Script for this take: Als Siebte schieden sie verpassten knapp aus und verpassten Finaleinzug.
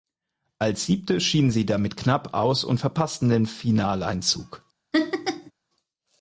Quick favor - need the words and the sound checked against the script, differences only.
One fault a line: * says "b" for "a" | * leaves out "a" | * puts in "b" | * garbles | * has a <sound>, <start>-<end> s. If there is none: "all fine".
* says "damit" for "verpassten"
* puts in "den"
* has a laugh, 4.9-5.5 s